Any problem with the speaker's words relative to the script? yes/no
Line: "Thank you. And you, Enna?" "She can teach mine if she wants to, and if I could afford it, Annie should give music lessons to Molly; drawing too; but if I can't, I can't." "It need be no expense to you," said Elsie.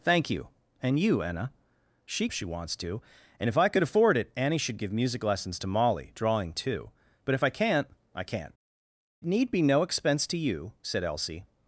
yes